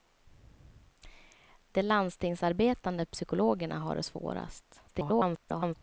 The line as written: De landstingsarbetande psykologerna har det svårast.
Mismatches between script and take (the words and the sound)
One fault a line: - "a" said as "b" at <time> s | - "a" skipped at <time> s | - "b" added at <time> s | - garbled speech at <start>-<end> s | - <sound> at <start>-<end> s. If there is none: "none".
- garbled speech at 4.9-5.8 s